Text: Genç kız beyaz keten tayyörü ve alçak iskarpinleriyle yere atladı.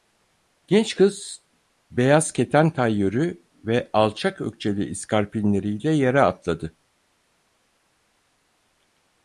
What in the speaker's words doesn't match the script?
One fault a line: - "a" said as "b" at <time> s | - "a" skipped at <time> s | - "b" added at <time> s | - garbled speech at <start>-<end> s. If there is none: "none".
- "ökçeli" added at 4.4 s